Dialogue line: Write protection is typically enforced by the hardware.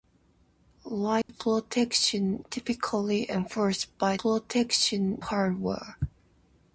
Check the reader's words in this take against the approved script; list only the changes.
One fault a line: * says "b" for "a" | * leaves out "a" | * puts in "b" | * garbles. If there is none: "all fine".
* leaves out "is"
* says "protection" for "the"